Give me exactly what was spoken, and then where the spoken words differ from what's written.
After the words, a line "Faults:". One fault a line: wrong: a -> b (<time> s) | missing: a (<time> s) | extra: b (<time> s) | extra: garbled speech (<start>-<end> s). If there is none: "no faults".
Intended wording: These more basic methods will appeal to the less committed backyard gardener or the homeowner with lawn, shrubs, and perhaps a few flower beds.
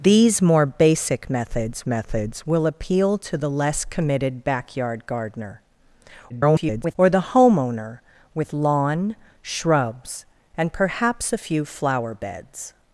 These more basic methods methods will appeal to the less committed backyard gardener [garbled] or the homeowner with lawn, shrubs, and perhaps a few flower beds.
Faults:
extra: methods (1.9 s)
extra: garbled speech (6.3-7.0 s)